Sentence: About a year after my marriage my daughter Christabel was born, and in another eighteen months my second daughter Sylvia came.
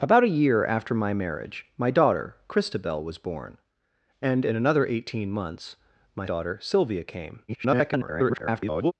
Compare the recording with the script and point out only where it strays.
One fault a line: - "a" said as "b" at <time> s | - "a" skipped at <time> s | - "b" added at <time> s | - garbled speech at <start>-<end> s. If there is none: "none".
- "second" skipped at 6.2 s
- garbled speech at 7.5-8.9 s